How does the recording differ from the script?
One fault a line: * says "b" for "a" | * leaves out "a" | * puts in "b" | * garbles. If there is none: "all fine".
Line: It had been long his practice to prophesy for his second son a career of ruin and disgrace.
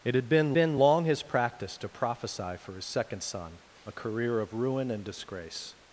* puts in "been"